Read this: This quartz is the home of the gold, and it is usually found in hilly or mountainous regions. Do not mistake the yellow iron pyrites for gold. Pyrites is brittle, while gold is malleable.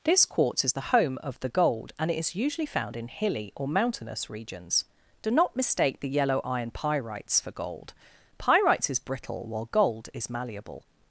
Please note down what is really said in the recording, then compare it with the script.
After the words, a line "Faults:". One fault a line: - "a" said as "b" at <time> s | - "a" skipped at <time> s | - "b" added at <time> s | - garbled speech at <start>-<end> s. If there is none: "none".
This quartz is the home of the gold, and it is usually found in hilly or mountainous regions. Do not mistake the yellow iron pyrites for gold. Pyrites is brittle, while gold is malleable.
Faults:
none